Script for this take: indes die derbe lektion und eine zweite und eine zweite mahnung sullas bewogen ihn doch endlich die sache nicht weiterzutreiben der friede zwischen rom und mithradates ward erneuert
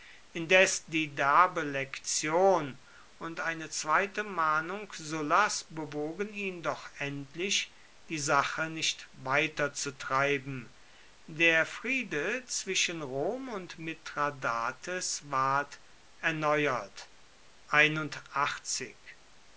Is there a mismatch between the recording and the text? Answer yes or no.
yes